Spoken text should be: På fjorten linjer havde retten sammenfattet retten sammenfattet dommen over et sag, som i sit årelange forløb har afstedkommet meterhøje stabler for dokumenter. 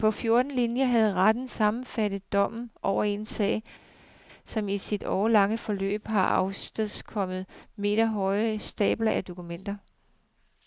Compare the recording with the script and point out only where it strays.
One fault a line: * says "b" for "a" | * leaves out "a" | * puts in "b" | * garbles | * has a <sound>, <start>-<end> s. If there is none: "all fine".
* leaves out "retten sammenfattet"
* says "en" for "et"
* says "af" for "for"